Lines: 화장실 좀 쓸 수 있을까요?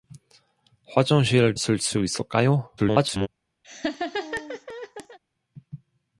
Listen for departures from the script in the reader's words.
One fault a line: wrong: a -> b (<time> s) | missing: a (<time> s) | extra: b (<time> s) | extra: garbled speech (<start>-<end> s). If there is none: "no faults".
missing: 좀 (1.5 s)
extra: garbled speech (2.8-3.3 s)